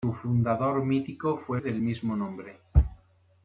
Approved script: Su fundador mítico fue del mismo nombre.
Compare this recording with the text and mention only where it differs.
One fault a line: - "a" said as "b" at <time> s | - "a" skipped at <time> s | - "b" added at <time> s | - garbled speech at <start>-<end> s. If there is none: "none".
none